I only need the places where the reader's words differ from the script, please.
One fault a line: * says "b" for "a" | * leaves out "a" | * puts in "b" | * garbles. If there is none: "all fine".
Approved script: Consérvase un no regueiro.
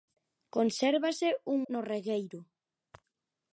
all fine